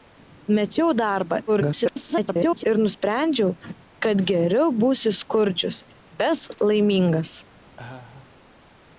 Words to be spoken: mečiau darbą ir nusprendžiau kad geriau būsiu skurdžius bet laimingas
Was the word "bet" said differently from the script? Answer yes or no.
no